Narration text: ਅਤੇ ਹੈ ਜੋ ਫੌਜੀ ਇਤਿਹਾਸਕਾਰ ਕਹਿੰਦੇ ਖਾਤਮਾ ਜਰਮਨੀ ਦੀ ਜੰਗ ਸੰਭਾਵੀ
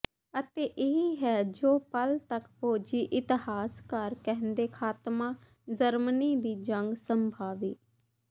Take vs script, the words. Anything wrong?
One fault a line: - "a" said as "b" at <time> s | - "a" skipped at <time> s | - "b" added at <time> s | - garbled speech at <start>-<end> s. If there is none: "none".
- "ਇਹ" added at 0.8 s
- "ਪਲ ਤੱਕ" added at 1.9 s